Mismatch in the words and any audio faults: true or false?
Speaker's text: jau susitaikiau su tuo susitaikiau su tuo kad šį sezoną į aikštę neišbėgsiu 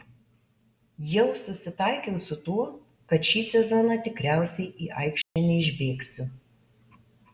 true